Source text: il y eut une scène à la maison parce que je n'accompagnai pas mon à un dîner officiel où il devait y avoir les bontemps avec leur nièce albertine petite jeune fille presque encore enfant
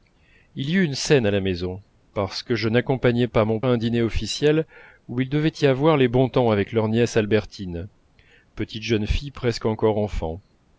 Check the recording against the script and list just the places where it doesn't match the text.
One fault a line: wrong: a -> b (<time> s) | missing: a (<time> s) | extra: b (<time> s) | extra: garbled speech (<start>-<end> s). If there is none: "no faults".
no faults